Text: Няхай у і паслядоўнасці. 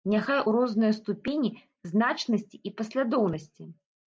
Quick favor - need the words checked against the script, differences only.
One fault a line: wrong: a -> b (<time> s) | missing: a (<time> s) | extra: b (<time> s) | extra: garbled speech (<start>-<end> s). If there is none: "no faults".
extra: рознай ступені значнасці (0.6 s)